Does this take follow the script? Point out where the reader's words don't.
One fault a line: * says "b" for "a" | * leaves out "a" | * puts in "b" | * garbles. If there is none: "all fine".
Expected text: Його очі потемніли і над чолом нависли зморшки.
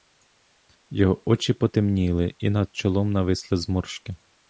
all fine